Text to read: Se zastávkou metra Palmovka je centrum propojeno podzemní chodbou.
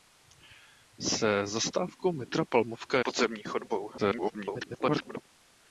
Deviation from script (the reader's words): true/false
true